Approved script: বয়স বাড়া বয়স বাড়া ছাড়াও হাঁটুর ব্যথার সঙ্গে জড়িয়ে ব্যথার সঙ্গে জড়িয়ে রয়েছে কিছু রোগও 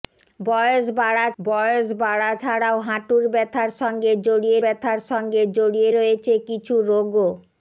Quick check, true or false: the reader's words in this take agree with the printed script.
true